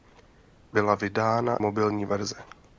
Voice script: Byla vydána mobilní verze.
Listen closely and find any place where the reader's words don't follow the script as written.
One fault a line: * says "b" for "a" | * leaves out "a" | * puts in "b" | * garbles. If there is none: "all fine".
all fine